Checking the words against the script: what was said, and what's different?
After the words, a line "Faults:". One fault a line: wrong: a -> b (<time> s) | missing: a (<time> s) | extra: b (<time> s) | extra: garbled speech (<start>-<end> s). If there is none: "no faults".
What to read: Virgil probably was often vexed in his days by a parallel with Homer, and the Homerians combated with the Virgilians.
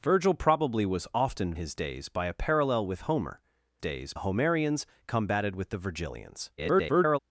Virgil probably was often his days by a parallel with Homer, days the Homerians combated with the Virgilians. [garbled]
Faults:
missing: vexed in (1.5 s)
wrong: and -> days (3.8 s)
extra: garbled speech (6.6-7.2 s)